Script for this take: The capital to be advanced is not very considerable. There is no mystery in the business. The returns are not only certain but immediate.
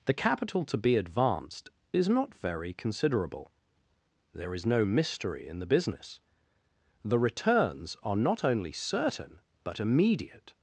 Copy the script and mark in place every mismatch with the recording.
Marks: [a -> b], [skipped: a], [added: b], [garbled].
The capital to be advanced is not very considerable. There is no mystery in the business. The returns are not only certain but immediate.